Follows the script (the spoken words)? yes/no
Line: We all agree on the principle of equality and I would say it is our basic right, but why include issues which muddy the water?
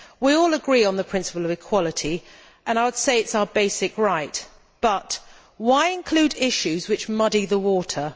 yes